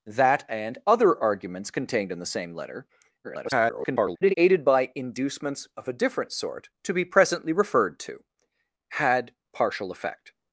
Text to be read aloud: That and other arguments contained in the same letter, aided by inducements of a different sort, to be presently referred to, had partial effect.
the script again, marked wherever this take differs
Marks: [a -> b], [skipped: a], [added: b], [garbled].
That and other arguments contained in the same letter, [garbled] aided by inducements of a different sort, to be presently referred to, had partial effect.